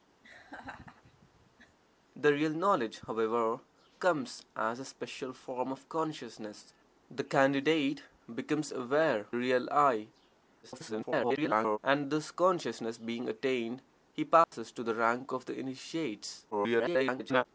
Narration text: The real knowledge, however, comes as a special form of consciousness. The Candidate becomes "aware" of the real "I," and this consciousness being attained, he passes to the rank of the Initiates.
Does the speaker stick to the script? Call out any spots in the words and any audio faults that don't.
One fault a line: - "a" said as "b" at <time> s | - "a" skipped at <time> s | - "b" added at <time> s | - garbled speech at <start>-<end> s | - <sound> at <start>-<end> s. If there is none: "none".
- laugh at 0.2-1.8 s
- "of the" skipped at 9.3 s
- garbled speech at 10.6-11.8 s
- dropout at 14.4-14.5 s
- garbled speech at 16.5-17.5 s